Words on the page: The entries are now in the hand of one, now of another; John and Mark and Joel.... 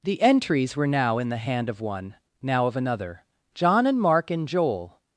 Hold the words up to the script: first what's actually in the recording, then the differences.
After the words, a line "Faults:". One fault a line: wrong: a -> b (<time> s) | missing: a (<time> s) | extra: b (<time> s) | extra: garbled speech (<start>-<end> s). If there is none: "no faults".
The entries were now in the hand of one, now of another; John and Mark and Joel....
Faults:
wrong: are -> were (0.8 s)